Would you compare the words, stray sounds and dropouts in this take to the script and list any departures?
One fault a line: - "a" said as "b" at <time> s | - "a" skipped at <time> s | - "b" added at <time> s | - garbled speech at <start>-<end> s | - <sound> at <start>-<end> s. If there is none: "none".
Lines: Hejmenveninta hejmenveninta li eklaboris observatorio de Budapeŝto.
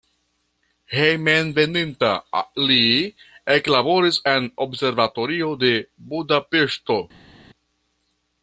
- "hejmenveninta" skipped at 2.1 s
- "en" added at 4.3 s